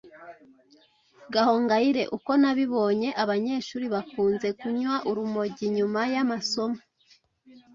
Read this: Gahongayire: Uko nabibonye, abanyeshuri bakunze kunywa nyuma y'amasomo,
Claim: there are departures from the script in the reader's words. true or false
true